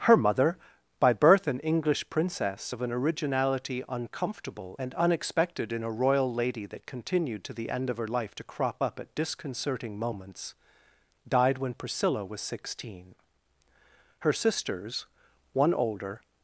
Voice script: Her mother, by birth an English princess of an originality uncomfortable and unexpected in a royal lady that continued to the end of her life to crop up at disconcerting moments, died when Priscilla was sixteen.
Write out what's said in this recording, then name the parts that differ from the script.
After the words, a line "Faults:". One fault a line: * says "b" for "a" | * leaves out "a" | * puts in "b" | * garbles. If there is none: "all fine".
Her mother, by birth an English princess of an originality uncomfortable and unexpected in a royal lady that continued to the end of her life to crop up at disconcerting moments, died when Priscilla was sixteen. Her sisters, one older
Faults:
* puts in "Her sisters one older"